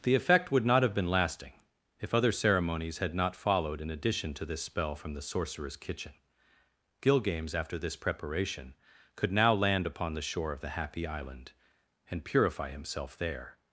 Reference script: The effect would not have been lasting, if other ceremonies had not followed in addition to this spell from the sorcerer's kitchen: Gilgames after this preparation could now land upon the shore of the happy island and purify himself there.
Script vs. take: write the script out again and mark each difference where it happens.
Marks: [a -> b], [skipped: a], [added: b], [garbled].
The effect would not have been lasting, if other ceremonies had not followed in addition to this spell from the sorcerer's kitchen: Gilgames after this preparation could now land upon the shore of the happy island and purify himself there.